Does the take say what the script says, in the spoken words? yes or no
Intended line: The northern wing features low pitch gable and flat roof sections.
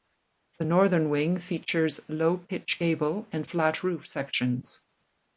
yes